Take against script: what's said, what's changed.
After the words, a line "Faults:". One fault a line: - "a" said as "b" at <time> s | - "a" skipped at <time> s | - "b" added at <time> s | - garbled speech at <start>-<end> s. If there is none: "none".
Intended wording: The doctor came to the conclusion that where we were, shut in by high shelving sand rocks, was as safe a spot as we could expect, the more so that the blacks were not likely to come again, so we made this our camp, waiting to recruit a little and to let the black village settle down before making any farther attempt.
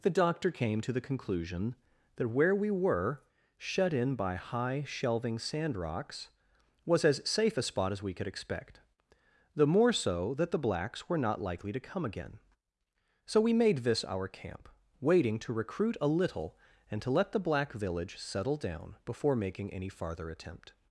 The doctor came to the conclusion that where we were, shut in by high shelving sand rocks, was as safe a spot as we could expect, the more so that the blacks were not likely to come again, so we made this our camp, waiting to recruit a little and to let the black village settle down before making any farther attempt.
Faults:
none